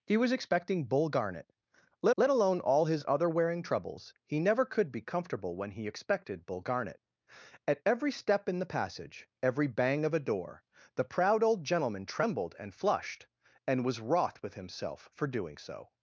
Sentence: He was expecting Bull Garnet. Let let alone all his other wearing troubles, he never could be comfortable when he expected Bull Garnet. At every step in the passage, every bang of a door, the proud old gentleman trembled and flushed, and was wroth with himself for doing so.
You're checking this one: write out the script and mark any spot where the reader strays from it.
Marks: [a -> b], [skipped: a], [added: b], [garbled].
He was expecting Bull Garnet. Let let alone all his other wearing troubles, he never could be comfortable when he expected Bull Garnet. At every step in the passage, every bang of a door, the proud old gentleman trembled and flushed, and was wroth with himself for doing so.